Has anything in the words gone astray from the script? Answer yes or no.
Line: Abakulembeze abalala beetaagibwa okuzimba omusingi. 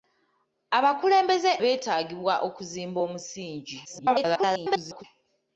yes